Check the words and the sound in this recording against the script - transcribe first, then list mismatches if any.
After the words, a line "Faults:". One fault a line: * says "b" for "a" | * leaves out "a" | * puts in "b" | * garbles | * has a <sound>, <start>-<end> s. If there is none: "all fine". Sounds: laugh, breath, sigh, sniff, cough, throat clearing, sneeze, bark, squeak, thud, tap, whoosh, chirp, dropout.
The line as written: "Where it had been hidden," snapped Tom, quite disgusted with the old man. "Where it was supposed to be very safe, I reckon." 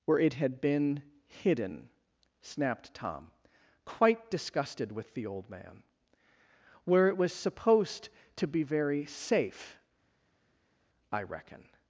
"Where it had been hidden," snapped Tom, quite disgusted with the old man. "Where it was supposed to be very safe, I reckon."
Faults:
all fine